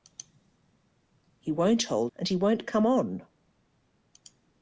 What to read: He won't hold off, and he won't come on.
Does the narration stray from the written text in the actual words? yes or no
yes